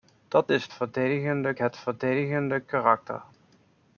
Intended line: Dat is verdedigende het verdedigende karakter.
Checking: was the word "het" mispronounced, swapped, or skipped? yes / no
no